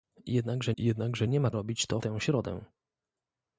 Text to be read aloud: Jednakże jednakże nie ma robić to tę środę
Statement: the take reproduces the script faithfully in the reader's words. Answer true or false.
true